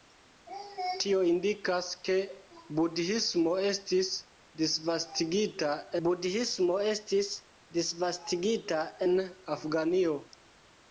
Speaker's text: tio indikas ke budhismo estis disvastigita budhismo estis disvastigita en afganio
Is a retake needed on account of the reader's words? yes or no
no